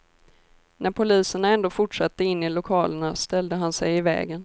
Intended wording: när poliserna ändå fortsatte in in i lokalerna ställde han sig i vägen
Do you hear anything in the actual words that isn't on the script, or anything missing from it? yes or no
yes